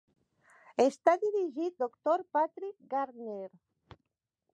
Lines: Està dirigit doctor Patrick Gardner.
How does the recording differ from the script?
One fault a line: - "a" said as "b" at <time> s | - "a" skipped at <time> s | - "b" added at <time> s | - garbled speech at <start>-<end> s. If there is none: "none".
none